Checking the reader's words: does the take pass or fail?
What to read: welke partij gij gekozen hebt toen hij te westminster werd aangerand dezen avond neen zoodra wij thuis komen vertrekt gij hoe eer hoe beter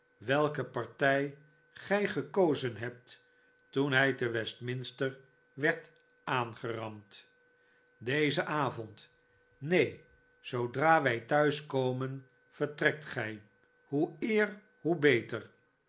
pass